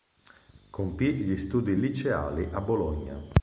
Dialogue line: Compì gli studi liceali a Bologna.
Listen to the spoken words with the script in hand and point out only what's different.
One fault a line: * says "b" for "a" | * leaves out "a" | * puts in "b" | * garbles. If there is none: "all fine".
all fine